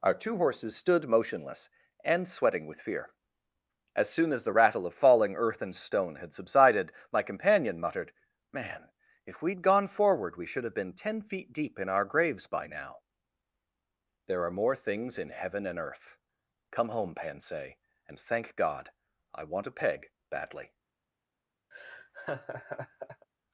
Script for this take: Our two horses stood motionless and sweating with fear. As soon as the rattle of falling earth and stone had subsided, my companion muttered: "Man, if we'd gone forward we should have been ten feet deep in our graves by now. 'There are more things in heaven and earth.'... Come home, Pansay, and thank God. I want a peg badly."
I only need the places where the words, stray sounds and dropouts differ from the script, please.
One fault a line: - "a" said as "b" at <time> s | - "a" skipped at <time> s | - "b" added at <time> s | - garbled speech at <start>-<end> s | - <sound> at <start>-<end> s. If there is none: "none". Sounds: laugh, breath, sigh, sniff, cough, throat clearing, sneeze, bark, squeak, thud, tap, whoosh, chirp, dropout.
- laugh at 21.7-23.3 s